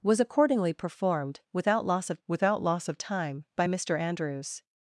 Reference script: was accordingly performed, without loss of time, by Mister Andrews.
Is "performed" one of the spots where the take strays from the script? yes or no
no